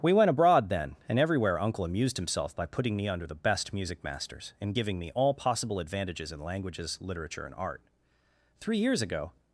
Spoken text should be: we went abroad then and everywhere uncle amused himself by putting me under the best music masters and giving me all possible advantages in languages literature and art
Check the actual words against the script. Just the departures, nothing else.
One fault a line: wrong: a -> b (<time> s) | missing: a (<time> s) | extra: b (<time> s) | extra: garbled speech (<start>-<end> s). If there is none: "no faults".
extra: three years ago (8.6 s)